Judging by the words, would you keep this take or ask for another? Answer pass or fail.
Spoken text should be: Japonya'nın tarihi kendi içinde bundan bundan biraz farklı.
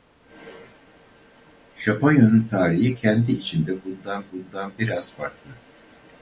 pass